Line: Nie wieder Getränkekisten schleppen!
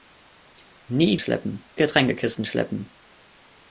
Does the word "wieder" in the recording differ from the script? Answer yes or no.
yes